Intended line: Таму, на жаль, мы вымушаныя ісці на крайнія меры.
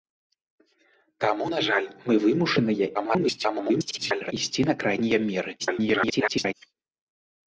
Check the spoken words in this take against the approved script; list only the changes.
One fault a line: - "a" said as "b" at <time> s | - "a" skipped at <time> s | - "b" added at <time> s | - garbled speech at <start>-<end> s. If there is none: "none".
- garbled speech at 2.9-4.3 s
- garbled speech at 5.6-6.5 s